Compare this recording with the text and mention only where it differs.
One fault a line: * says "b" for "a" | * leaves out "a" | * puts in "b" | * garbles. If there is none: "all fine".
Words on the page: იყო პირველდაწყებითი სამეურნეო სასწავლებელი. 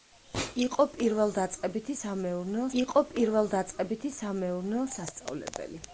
* puts in "იყო პირველდაწყებითი სამეურნეო"